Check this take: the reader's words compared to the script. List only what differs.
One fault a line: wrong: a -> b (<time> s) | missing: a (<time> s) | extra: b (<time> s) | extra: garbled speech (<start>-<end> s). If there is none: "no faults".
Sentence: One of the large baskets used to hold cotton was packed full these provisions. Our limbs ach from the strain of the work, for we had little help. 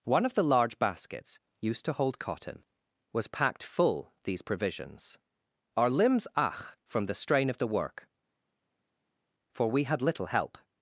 no faults